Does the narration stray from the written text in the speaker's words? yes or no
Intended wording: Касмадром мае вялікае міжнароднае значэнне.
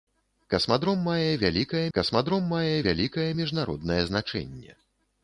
yes